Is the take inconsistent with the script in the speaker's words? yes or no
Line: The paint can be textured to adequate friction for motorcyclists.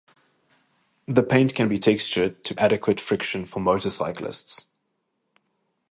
no